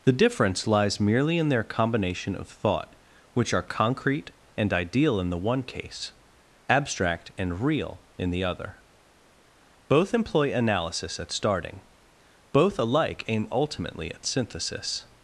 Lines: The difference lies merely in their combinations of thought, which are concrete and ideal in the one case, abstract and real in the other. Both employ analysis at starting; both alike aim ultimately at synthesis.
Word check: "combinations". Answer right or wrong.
wrong